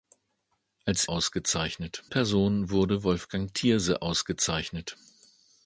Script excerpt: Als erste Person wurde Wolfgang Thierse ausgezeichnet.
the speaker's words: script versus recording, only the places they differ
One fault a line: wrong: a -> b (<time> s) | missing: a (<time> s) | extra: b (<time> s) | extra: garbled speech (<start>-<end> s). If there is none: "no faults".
wrong: erste -> ausgezeichnet (1.1 s)